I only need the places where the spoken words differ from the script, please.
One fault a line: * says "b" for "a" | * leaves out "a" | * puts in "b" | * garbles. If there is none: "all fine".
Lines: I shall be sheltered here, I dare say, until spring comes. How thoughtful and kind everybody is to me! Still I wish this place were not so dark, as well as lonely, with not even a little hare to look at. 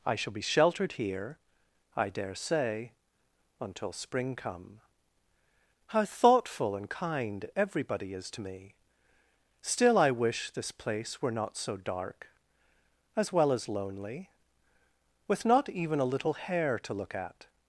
* says "come" for "comes"